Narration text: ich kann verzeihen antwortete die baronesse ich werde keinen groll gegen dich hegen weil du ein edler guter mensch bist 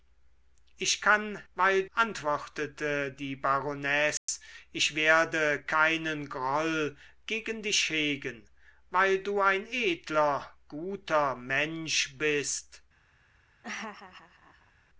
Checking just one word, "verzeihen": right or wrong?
wrong